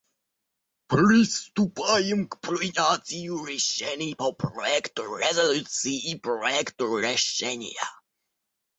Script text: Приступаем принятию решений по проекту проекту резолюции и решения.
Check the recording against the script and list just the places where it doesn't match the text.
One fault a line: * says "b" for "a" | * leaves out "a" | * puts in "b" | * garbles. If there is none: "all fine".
* puts in "к"
* leaves out "проекту"
* puts in "проекту"